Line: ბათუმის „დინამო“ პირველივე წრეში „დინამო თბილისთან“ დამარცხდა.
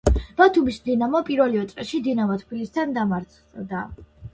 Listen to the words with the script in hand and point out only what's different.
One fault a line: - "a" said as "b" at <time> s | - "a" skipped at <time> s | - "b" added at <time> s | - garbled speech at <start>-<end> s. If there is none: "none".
none